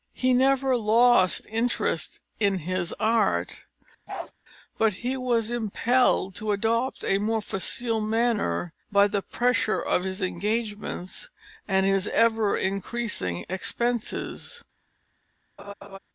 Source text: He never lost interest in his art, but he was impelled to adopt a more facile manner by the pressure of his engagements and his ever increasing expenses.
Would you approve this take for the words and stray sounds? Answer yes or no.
no